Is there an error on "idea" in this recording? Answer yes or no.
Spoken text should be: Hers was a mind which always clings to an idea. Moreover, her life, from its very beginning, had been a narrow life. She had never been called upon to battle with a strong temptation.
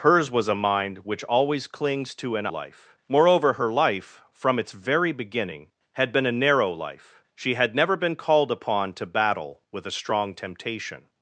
yes